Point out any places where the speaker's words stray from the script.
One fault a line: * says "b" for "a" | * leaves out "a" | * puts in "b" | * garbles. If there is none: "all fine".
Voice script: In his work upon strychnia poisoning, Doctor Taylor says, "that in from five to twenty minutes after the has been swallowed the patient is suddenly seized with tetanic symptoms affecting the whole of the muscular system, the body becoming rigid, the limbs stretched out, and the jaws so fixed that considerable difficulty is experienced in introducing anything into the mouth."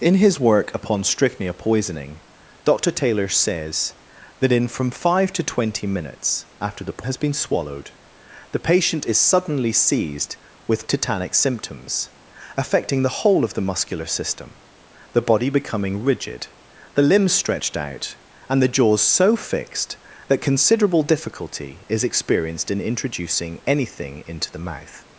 all fine